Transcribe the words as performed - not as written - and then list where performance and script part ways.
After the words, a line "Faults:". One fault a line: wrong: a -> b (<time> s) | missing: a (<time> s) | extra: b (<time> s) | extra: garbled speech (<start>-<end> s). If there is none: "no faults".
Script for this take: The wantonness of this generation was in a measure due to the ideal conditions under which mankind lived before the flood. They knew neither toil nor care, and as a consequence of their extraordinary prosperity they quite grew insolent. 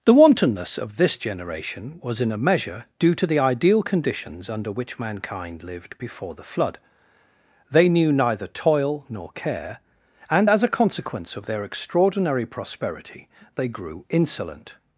The wantonness of this generation was in a measure due to the ideal conditions under which mankind lived before the flood. They knew neither toil nor care, and as a consequence of their extraordinary prosperity they grew insolent.
Faults:
missing: quite (13.7 s)